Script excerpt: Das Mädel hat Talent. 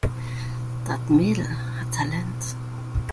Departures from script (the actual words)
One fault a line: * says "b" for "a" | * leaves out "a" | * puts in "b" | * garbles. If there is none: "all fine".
all fine